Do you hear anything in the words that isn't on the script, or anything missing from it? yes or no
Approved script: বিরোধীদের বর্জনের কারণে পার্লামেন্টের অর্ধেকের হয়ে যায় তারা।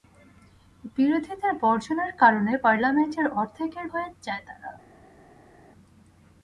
no